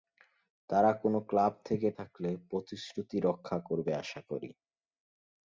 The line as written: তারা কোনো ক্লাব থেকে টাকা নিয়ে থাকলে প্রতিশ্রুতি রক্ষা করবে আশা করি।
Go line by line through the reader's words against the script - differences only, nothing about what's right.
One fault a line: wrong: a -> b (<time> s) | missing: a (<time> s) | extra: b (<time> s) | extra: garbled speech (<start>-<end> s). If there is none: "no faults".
missing: টাকা নিয়ে (1.9 s)